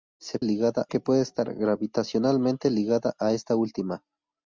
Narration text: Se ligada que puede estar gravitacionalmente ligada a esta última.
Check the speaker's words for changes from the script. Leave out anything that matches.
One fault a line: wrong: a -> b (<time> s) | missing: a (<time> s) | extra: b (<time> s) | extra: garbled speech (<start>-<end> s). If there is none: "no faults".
no faults